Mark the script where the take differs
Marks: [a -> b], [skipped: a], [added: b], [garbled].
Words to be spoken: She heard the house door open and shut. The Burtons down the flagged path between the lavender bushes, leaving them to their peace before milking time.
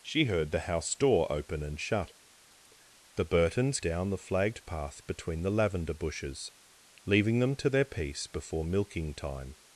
She heard the house door open and shut. The Burtons down the flagged path between the lavender bushes, leaving them to their peace before milking time.